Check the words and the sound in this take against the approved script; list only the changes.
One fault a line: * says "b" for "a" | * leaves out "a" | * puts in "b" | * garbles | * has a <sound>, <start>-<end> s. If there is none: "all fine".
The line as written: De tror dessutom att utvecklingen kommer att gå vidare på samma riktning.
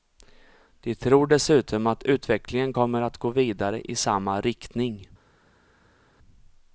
* says "i" for "på"